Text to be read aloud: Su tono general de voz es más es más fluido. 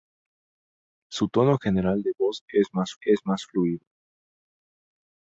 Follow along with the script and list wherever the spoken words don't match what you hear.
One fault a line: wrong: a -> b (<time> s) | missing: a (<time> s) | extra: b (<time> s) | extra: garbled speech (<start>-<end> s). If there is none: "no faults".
no faults